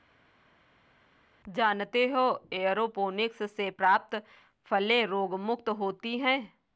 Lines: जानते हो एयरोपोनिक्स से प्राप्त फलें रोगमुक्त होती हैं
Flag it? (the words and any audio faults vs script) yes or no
no